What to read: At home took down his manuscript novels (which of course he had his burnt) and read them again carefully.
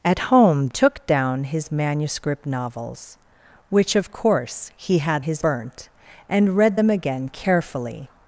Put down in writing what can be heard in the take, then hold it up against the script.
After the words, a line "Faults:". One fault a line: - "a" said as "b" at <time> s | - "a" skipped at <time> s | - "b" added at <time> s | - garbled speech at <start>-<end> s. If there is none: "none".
At home took down his manuscript novels (which of course he had his burnt) and read them again carefully.
Faults:
none